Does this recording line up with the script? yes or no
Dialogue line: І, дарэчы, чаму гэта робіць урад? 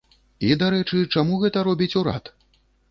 yes